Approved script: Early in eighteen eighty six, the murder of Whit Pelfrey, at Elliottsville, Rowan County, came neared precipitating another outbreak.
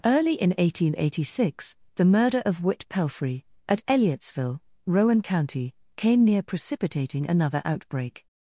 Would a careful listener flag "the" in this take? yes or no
no